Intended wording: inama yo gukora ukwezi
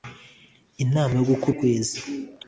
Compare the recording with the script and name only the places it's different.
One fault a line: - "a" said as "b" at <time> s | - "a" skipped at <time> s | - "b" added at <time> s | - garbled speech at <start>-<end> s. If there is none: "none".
none